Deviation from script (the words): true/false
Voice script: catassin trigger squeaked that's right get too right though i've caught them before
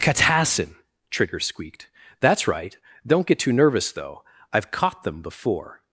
true